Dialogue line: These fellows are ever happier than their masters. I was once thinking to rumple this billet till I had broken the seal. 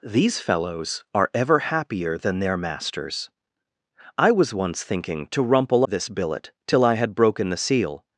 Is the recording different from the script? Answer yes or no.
no